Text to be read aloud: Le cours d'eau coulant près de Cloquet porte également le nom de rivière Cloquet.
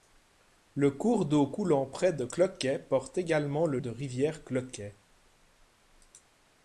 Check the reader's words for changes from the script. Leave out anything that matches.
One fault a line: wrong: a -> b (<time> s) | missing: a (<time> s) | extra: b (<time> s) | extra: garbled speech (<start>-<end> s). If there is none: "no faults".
missing: nom (3.8 s)